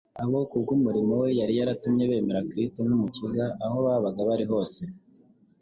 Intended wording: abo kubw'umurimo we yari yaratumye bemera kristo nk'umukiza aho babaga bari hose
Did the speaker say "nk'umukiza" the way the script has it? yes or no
yes